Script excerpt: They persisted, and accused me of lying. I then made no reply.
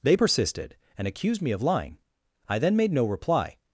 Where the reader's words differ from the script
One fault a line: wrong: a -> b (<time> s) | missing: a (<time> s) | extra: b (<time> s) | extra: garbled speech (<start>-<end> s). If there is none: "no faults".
no faults